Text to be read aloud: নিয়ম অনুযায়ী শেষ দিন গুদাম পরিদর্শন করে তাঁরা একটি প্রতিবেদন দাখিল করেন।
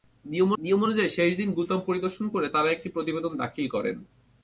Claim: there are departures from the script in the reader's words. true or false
true